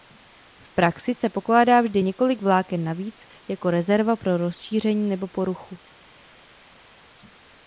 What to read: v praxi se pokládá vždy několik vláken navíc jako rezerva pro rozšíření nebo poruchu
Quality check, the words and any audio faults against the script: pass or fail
pass